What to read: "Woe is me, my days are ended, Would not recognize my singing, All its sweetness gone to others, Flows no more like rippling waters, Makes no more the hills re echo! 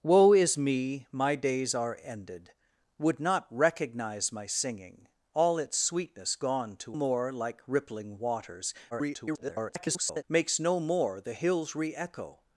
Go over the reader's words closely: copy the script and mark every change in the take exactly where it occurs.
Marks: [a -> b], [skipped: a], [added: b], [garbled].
"Woe is me, my days are ended, Would not recognize my singing, All its sweetness gone to [skipped: others, Flows no] more like rippling waters, [garbled] Makes no more the hills re echo!